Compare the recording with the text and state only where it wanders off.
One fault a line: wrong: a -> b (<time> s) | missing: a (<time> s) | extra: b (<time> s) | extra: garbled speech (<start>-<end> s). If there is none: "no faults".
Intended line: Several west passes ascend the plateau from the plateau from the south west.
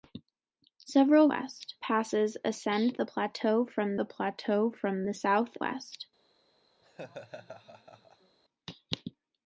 no faults